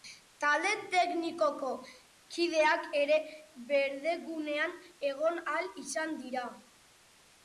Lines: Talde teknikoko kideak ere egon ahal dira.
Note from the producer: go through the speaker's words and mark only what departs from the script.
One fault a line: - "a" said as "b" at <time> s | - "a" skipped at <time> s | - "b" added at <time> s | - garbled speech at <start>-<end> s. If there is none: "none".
- "berdegunean" added at 3.7 s
- "izan" added at 5.8 s